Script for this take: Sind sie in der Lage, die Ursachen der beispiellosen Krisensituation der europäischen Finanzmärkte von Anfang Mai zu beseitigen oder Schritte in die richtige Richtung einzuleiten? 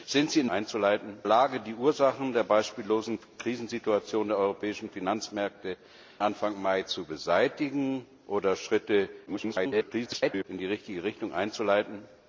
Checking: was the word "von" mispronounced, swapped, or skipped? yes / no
yes